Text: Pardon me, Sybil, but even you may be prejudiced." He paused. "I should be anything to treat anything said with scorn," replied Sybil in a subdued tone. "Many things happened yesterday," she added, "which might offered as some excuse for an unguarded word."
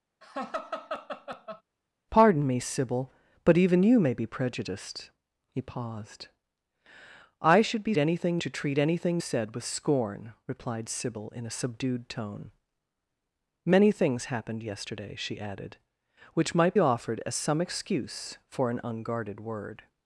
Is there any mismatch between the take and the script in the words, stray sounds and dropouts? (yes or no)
yes